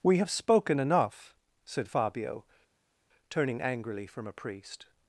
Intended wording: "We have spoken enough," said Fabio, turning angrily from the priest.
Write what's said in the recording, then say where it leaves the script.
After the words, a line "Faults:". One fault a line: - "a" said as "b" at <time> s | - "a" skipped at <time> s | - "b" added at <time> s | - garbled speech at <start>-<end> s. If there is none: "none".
"We have spoken enough," said Fabio, turning angrily from a priest.
Faults:
- "the" said as "a" at 4.3 s